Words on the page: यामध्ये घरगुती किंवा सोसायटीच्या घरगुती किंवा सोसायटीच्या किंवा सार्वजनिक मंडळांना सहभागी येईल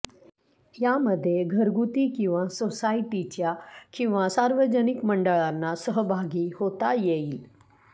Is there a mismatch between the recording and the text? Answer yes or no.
yes